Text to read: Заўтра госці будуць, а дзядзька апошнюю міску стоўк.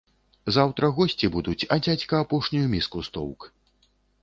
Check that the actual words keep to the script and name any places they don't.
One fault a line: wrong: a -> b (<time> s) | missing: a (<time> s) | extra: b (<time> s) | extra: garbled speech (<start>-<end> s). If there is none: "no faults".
no faults